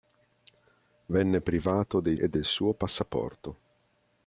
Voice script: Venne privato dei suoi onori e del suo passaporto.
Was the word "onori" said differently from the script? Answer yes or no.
yes